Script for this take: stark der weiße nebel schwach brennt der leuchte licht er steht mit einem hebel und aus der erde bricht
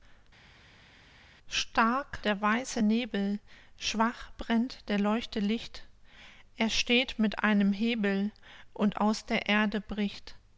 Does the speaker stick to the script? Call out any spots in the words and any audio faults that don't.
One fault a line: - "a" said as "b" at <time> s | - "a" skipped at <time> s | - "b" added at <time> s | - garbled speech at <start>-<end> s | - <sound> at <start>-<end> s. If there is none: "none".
none